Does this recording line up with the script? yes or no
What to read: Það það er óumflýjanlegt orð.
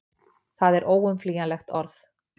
no